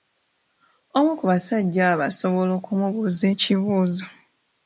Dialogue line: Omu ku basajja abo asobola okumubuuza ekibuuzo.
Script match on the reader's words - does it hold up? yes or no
yes